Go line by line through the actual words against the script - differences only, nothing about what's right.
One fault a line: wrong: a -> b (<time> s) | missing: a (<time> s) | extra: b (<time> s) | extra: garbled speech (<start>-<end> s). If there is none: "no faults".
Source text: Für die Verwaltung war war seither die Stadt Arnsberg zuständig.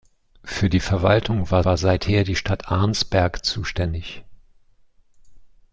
no faults